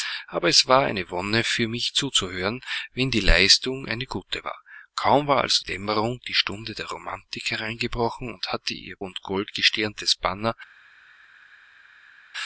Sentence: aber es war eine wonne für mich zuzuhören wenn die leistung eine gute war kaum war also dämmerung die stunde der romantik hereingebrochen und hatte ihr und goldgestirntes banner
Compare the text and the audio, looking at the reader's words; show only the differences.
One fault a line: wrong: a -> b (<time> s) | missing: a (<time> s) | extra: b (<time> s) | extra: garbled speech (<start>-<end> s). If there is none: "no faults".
no faults